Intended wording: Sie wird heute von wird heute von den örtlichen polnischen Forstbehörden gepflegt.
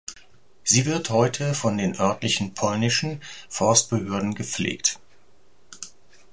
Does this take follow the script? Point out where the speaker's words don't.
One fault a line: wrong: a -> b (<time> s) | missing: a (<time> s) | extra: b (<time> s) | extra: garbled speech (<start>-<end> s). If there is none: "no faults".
missing: wird heute von (1.8 s)